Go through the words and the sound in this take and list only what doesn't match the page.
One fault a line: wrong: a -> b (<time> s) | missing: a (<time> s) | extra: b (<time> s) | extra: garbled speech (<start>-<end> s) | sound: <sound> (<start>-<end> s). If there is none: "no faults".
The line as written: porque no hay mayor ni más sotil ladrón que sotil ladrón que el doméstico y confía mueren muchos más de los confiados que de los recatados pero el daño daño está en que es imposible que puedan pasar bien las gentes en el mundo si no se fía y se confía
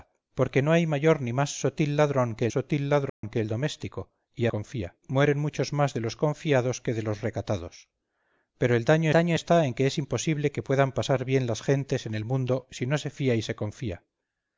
sound: dropout (3.1-3.2 s)